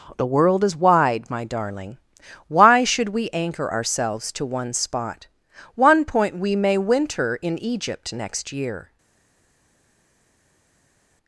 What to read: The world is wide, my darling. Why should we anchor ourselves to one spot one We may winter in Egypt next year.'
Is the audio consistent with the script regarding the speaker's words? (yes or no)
no